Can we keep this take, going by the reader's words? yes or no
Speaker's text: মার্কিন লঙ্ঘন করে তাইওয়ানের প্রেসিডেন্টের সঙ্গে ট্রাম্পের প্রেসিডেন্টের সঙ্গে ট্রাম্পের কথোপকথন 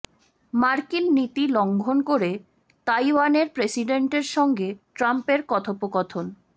no